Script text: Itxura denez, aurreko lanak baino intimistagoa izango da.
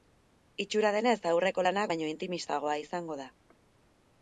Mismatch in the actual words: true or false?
false